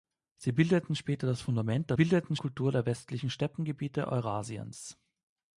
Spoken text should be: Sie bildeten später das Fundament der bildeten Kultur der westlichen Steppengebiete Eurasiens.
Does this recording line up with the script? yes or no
yes